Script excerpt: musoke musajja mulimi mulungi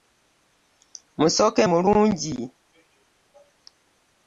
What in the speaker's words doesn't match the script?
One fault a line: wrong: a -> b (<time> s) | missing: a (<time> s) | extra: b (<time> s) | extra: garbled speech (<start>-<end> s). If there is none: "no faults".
missing: musajja mulimi (1.6 s)